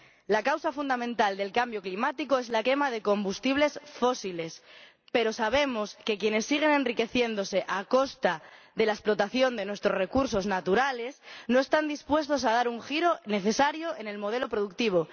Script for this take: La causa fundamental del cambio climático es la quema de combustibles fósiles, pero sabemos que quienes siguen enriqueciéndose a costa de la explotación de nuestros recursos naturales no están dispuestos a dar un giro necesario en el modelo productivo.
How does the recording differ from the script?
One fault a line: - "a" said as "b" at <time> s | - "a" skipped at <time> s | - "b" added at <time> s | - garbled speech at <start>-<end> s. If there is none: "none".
none